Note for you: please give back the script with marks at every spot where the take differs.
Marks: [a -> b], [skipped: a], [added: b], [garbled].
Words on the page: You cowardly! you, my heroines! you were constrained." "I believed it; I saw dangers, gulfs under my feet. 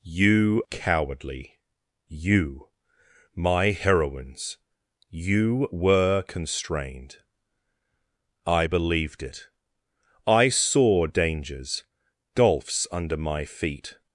You cowardly! you, my heroines! you were constrained." "I believed it; I saw dangers, gulfs under my feet.